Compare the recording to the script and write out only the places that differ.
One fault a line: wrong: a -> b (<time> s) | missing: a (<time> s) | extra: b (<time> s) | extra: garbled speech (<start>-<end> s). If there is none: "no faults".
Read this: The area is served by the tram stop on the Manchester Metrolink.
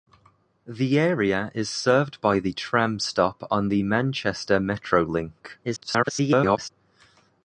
extra: garbled speech (5.6-6.7 s)